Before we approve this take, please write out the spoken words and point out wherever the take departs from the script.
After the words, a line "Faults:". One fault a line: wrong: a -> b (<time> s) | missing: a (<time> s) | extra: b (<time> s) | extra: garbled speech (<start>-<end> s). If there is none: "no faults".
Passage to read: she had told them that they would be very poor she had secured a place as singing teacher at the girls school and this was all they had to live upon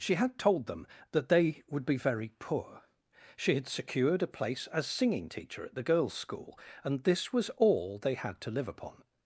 she had told them that they would be very poor she had secured a place as singing teacher at the girls school and this was all they had to live upon
Faults:
no faults